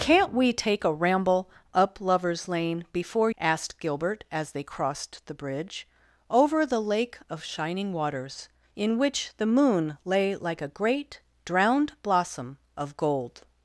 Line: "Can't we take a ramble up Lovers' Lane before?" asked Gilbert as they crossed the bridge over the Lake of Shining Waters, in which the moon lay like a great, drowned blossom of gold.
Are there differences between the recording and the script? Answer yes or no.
no